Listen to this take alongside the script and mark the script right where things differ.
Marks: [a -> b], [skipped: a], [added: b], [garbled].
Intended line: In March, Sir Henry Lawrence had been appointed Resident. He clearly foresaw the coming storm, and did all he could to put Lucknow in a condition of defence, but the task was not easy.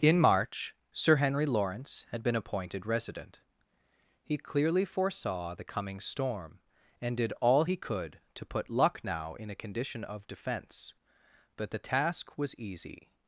In March, Sir Henry Lawrence had been appointed Resident. He clearly foresaw the coming storm, and did all he could to put Lucknow in a condition of defence, but the task was [skipped: not] easy.